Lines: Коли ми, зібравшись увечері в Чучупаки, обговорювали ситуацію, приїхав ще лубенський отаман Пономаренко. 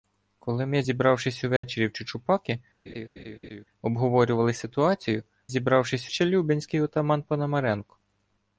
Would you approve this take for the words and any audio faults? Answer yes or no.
no